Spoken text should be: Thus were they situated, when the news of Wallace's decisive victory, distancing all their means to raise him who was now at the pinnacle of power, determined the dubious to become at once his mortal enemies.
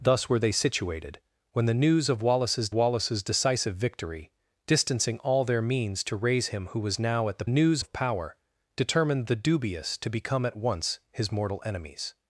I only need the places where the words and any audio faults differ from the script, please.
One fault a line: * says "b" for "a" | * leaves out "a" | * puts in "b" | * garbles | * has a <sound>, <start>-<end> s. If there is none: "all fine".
* puts in "Wallace's"
* says "news" for "pinnacle"